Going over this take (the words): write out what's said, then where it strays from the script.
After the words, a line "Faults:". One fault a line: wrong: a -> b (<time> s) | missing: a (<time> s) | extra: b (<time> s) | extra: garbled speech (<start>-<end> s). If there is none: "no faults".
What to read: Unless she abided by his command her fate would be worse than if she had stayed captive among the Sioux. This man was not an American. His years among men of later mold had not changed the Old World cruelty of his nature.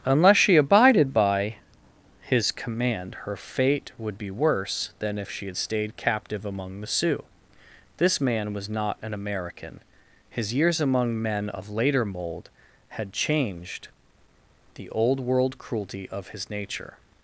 Unless she abided by his command her fate would be worse than if she had stayed captive among the Sioux. This man was not an American. His years among men of later mold had changed the Old World cruelty of his nature.
Faults:
missing: not (13.1 s)